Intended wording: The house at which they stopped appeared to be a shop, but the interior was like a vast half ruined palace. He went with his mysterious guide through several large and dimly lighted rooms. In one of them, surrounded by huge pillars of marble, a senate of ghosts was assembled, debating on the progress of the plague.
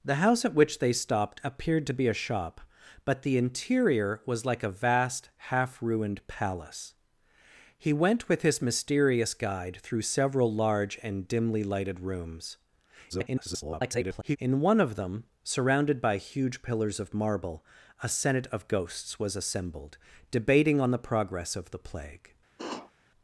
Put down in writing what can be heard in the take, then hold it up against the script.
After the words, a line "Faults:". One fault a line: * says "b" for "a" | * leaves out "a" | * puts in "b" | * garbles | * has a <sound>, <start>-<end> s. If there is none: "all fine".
The house at which they stopped appeared to be a shop, but the interior was like a vast half ruined palace. He went with his mysterious guide through several large and dimly lighted rooms. [garbled] In one of them, surrounded by huge pillars of marble, a senate of ghosts was assembled, debating on the progress of the plague.
Faults:
* garbles
* has a sniff, 22.6-22.9 s